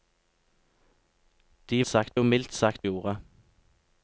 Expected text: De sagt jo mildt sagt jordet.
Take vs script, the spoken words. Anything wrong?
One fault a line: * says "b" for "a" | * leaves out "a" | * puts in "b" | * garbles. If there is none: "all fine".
all fine